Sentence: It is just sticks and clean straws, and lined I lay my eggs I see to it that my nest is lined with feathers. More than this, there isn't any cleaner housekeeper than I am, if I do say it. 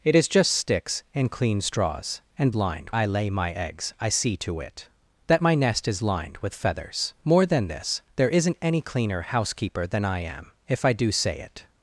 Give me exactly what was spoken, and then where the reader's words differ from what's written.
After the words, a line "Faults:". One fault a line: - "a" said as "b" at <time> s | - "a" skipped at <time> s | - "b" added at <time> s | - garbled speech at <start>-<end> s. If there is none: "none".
It is just sticks and clean straws, and lined I lay my eggs I see to it that my nest is lined with feathers. More than this, there isn't any cleaner housekeeper than I am, if I do say it.
Faults:
none